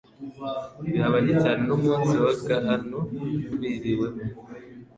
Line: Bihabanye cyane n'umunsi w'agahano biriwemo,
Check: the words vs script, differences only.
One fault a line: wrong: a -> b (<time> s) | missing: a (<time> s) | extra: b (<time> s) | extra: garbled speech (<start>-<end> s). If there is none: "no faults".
no faults